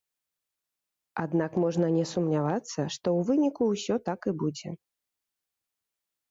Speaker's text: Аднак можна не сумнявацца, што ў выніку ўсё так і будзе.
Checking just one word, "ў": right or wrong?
right